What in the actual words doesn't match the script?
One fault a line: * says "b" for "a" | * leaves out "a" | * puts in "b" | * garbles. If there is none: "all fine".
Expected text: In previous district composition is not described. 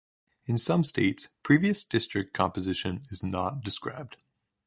* puts in "some states"